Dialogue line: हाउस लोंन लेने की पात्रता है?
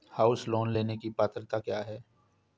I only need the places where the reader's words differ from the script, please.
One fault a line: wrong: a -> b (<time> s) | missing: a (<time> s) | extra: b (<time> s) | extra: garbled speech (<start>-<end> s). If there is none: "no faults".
extra: क्या (1.6 s)